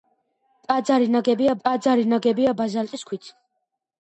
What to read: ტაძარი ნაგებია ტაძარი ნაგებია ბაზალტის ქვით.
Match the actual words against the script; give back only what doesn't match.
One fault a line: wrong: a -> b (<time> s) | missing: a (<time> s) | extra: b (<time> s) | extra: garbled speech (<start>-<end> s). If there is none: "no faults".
no faults